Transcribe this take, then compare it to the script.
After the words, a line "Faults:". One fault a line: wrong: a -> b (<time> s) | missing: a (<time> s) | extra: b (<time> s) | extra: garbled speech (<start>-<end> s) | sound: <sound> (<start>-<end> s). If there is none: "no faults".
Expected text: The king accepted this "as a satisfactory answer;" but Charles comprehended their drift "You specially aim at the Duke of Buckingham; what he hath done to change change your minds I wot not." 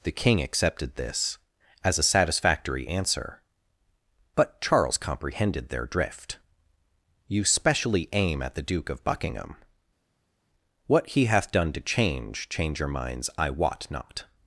The king accepted this "as a satisfactory answer;" but Charles comprehended their drift "You specially aim at the Duke of Buckingham; what he hath done to change change your minds I wot not."
Faults:
no faults